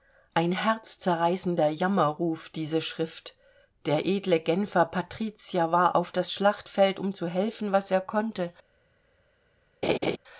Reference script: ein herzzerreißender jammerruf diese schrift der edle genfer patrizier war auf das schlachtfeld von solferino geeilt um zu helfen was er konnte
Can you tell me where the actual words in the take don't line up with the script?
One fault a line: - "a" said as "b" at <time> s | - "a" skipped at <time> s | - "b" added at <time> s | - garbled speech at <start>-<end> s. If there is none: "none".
- "von solferino geeilt" skipped at 7.0 s